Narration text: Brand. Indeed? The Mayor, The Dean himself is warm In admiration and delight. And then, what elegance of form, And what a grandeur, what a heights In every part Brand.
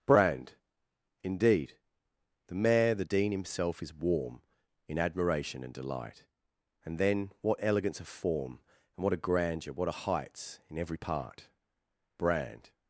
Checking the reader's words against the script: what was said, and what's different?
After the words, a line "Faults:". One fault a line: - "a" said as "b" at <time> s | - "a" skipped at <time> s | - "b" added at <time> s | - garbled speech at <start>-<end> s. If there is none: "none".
Brand. Indeed? The Mayor, The Dean himself is warm In admiration and delight. And then, what elegance of form, And what a grandeur, what a heights In every part Brand.
Faults:
none